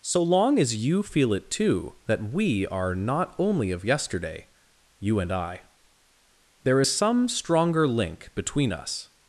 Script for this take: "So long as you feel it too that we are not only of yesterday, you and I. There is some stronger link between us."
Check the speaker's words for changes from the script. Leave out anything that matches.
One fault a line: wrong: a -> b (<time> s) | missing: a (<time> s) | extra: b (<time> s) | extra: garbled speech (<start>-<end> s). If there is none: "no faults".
no faults